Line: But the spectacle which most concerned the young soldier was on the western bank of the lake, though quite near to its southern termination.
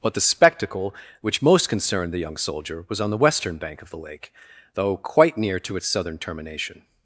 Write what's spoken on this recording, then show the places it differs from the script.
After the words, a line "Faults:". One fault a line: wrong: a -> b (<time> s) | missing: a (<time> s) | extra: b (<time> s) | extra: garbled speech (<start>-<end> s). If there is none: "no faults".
But the spectacle which most concerned the young soldier was on the western bank of the lake, though quite near to its southern termination.
Faults:
no faults